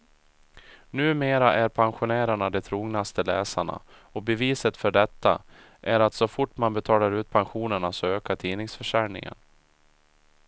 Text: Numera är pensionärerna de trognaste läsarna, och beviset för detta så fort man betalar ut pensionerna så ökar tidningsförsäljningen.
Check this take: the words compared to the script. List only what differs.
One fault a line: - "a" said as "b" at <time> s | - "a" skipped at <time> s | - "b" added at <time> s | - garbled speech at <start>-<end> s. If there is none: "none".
- "är att" added at 5.8 s